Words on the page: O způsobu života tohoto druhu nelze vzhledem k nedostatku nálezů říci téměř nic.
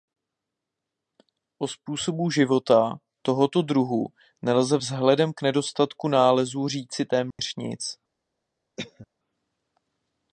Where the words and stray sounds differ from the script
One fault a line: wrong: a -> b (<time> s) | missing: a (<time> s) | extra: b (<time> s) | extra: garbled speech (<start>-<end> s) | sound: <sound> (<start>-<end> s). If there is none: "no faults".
sound: dropout (7.3-7.4 s)
sound: cough (8.8-9.1 s)